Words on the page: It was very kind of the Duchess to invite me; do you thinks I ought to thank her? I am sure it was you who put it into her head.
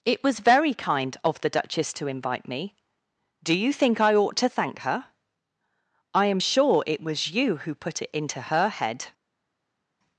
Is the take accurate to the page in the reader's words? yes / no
no